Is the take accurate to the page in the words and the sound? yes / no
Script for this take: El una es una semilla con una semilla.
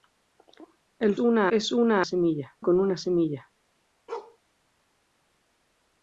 no